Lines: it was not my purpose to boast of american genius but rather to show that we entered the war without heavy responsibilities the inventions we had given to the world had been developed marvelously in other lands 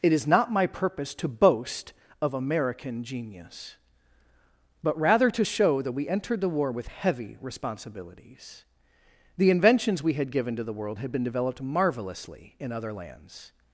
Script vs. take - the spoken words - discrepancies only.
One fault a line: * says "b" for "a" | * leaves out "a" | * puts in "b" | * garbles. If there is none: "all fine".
* says "is" for "was"
* says "with" for "without"